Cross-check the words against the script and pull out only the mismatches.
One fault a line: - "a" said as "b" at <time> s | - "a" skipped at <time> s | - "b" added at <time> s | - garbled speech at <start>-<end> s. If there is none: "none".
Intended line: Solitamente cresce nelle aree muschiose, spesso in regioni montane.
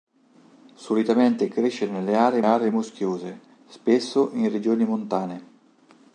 - "aree" added at 2.4 s